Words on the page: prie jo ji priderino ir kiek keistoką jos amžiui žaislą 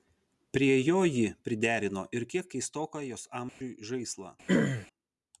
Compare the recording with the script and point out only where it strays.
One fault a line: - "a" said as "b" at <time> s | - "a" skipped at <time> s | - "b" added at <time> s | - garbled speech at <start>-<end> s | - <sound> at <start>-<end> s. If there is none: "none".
- dropout at 3.5-3.6 s
- throat clearing at 4.5-4.9 s